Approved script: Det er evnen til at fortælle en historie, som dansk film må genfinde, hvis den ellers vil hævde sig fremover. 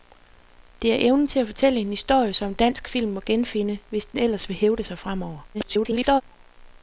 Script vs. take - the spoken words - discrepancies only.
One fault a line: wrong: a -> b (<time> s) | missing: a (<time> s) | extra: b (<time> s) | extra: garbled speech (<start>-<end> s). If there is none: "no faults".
extra: garbled speech (5.5-6.2 s)